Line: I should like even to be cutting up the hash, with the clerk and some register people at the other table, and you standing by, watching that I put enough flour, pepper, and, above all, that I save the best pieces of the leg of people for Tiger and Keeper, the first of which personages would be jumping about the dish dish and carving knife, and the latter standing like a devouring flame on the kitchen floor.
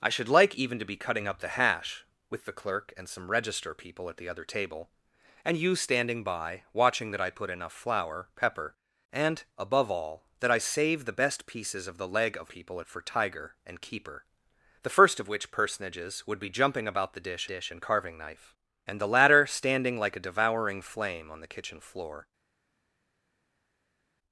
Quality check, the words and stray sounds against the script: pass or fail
pass